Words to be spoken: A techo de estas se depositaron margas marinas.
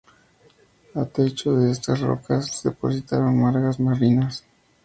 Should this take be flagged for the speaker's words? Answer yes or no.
yes